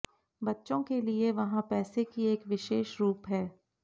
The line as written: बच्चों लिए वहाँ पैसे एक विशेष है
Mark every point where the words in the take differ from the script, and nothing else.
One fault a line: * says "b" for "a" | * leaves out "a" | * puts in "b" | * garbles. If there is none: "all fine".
* puts in "के"
* puts in "की"
* puts in "रूप"